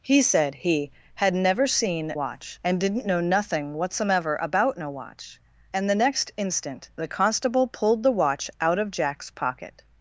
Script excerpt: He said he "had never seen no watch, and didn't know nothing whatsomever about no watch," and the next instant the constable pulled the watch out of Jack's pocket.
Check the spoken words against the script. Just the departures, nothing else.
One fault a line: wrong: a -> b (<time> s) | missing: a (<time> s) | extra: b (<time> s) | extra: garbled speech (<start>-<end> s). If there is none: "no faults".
missing: no (2.1 s)